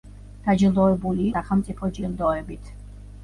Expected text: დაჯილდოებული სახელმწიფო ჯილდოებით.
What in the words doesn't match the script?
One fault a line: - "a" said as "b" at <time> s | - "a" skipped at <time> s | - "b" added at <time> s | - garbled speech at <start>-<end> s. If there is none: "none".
none